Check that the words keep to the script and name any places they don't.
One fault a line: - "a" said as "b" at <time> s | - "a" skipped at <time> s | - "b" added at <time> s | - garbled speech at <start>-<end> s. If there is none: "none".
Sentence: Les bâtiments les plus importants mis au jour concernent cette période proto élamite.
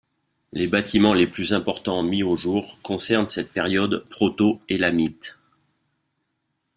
none